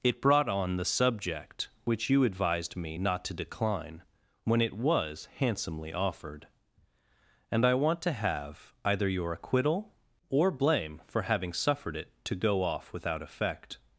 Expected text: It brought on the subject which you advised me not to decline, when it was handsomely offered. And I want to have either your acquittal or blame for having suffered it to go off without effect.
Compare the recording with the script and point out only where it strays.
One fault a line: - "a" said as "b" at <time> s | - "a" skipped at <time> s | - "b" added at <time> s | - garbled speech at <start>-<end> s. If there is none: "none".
none